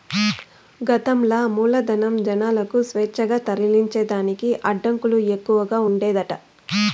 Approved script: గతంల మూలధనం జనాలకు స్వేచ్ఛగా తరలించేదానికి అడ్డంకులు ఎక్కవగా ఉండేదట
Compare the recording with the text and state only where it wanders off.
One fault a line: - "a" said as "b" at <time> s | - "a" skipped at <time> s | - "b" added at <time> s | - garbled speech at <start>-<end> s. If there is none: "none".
none